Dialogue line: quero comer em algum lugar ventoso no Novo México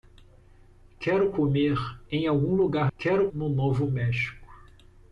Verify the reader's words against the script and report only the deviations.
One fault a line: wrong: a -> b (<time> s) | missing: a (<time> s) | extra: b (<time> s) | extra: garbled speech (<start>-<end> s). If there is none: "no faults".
wrong: ventoso -> quero (3.0 s)